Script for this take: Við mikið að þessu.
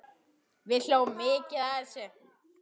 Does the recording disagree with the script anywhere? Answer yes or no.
yes